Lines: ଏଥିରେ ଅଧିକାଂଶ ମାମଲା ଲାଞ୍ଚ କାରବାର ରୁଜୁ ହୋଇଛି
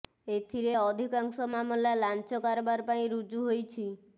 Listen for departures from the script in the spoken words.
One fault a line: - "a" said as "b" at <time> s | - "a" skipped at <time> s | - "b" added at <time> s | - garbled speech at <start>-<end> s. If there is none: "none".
- "ପାଇଁ" added at 2.9 s